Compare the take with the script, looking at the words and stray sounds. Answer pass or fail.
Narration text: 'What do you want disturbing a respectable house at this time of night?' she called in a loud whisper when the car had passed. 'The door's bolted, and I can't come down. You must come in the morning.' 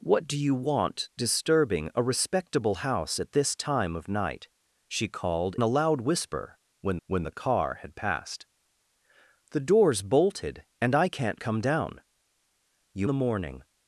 fail